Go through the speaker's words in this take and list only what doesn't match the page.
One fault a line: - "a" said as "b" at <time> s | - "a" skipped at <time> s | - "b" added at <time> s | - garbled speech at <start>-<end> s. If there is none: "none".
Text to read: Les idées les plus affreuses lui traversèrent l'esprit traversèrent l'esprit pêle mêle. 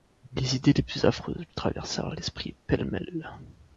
- "traversèrent l'esprit" skipped at 2.6 s